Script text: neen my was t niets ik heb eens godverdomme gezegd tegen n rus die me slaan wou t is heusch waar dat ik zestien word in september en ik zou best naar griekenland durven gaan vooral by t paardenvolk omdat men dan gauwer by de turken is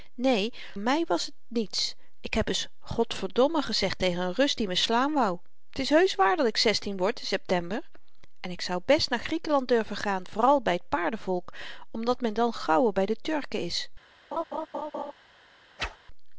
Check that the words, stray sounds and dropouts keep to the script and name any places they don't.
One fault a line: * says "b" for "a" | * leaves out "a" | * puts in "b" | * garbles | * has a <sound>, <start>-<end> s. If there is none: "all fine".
* has a laugh, 14.3-15.1 s
* has a whoosh, 15.8-16.0 s